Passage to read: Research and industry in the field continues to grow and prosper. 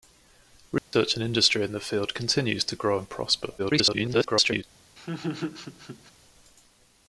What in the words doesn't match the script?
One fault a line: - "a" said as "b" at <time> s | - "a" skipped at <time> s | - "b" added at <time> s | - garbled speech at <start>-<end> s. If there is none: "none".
- garbled speech at 3.6-4.6 s